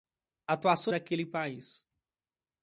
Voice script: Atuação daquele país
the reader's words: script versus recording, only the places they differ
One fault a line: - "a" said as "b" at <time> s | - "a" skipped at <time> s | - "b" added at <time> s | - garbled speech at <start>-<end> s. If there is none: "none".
none